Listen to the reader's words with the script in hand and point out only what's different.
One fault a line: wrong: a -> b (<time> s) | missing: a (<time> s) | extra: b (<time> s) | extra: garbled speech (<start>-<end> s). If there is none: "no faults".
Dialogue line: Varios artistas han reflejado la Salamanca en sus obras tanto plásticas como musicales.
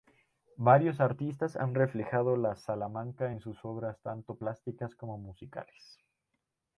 no faults